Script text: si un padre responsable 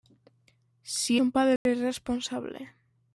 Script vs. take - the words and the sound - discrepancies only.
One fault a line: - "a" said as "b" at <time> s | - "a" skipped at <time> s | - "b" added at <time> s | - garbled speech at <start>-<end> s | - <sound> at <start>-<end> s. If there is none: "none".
- dropout at 1.6-1.7 s